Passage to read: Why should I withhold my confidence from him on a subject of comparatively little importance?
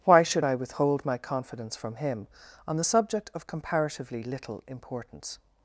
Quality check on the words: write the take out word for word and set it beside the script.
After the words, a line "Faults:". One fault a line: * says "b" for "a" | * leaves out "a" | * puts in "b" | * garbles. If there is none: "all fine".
Why should I withhold my confidence from him on the subject of comparatively little importance?
Faults:
* says "the" for "a"